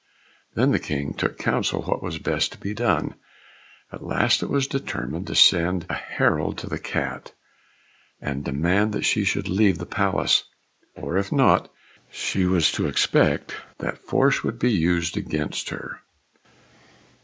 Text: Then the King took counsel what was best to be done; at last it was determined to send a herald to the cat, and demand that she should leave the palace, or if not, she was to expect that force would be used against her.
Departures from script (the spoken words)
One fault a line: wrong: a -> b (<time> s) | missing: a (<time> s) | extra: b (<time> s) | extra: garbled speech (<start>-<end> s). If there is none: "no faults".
no faults